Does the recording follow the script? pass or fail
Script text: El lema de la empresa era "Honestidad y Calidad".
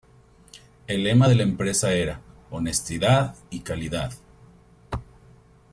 pass